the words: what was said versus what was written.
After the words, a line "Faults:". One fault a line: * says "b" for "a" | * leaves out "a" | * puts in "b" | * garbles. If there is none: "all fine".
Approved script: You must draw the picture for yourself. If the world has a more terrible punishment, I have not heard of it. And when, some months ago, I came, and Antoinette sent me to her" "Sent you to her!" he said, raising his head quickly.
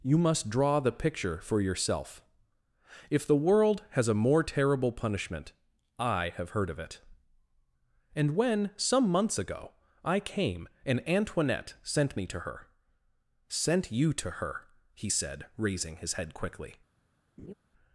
You must draw the picture for yourself. If the world has a more terrible punishment, I have heard of it. And when, some months ago, I came, and Antoinette sent me to her" "Sent you to her!" he said, raising his head quickly.
Faults:
* leaves out "not"